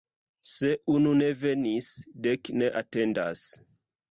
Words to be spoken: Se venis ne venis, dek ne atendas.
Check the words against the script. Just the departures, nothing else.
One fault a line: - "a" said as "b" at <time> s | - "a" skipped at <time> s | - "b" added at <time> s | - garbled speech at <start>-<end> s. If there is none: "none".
- "venis" said as "unu" at 0.9 s